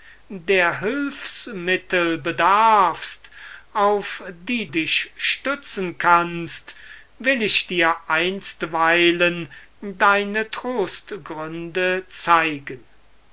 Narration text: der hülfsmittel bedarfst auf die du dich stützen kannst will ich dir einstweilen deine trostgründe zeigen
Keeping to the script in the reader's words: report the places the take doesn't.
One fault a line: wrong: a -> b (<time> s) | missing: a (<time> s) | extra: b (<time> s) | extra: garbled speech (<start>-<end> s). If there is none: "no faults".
missing: du (4.7 s)